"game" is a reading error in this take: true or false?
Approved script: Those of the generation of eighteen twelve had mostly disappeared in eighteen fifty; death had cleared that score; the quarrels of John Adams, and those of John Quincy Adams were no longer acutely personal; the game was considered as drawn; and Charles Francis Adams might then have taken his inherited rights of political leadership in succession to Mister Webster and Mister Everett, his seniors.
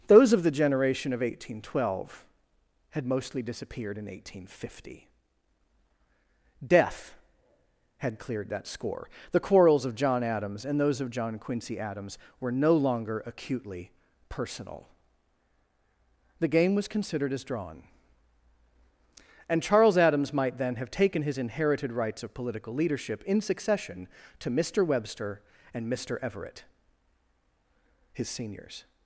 false